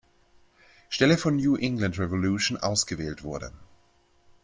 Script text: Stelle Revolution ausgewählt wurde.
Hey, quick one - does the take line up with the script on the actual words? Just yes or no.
no